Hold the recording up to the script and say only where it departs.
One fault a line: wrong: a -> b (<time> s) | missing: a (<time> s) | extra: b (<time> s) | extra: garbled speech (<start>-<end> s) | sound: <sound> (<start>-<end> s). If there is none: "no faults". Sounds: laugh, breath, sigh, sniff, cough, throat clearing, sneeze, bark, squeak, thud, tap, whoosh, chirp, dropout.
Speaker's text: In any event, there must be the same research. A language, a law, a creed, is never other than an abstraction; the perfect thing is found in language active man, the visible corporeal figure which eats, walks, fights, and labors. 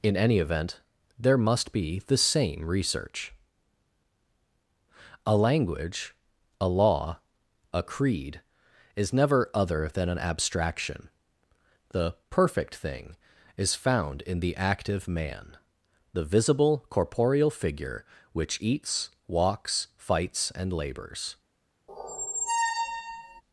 wrong: language -> the (14.4 s)
sound: squeak (21.9-23.4 s)